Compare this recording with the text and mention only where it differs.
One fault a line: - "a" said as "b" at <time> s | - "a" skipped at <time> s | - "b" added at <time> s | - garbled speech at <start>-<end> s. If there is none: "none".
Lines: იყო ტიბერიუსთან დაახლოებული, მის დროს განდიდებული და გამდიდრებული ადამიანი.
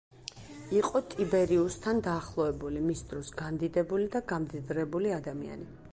none